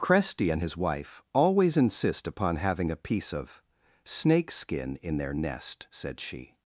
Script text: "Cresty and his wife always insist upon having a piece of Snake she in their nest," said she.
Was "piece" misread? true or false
false